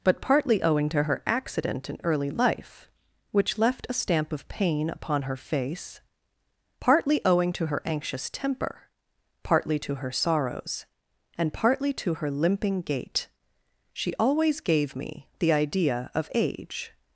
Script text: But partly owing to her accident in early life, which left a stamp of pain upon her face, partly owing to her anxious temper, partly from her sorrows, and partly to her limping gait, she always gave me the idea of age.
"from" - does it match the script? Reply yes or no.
no